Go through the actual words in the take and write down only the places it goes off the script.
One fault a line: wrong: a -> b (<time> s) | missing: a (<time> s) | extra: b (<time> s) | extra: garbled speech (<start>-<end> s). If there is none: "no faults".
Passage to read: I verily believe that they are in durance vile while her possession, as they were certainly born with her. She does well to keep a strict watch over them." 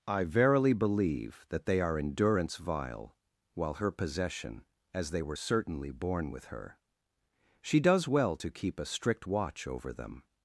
no faults